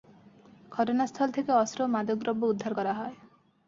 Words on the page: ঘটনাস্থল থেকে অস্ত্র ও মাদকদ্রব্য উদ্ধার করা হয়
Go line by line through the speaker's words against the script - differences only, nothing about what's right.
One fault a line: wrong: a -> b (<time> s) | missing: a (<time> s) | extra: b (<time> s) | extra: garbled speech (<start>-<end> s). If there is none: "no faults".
no faults